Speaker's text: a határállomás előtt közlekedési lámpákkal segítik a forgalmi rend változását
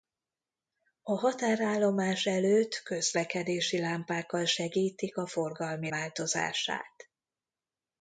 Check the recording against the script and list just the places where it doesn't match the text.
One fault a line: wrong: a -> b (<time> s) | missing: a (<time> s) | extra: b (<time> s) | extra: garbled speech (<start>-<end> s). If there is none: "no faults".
missing: rend (5.9 s)